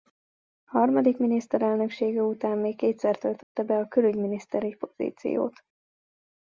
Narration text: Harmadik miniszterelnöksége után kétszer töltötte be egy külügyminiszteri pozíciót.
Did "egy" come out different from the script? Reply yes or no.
yes